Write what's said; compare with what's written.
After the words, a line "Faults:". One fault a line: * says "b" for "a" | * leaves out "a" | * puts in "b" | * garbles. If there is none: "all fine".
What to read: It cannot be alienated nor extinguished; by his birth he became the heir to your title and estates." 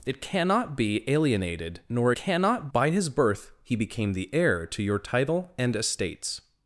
It cannot be alienated nor cannot; by his birth he became the heir to your title and estates."
Faults:
* says "cannot" for "extinguished"